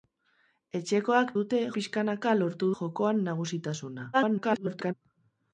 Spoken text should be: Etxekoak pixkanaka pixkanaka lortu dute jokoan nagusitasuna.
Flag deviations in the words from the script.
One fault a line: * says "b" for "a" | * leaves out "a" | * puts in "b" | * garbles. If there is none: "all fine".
* says "dute" for "pixkanaka"
* leaves out "dute"
* garbles